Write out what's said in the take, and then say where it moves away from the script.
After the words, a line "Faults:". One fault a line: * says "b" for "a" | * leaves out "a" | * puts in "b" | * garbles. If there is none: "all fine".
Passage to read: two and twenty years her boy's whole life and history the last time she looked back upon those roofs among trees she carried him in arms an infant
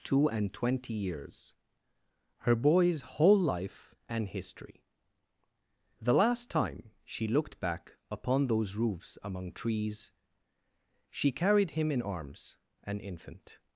two and twenty years her boy's whole life and history the last time she looked back upon those roofs among trees she carried him in arms an infant
Faults:
all fine